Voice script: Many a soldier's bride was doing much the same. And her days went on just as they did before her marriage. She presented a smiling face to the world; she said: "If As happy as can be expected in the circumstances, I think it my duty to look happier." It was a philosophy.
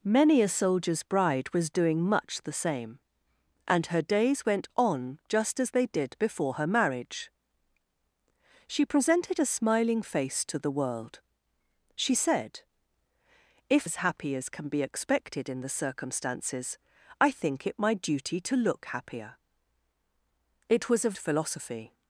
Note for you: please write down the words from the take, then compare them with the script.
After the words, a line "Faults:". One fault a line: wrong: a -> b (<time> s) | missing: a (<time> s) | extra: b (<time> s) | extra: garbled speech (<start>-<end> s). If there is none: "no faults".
Many a soldier's bride was doing much the same. And her days went on just as they did before her marriage. She presented a smiling face to the world; she said: "If As happy as can be expected in the circumstances, I think it my duty to look happier." It was a philosophy.
Faults:
no faults